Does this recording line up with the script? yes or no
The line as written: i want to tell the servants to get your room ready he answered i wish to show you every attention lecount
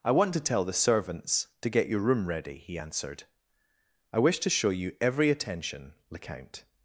yes